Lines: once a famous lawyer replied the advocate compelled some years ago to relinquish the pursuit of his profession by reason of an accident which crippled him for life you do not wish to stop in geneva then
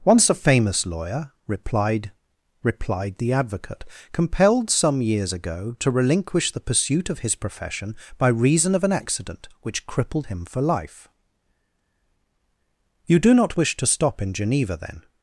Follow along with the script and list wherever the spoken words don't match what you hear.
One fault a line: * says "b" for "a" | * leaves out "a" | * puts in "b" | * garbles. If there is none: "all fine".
* puts in "replied"